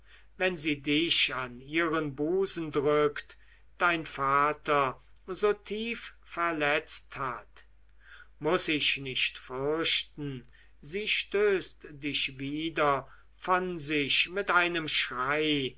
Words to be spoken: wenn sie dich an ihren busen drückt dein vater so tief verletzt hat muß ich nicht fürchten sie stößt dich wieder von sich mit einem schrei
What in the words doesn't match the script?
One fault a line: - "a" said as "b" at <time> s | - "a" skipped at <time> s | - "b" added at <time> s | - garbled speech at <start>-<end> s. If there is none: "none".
none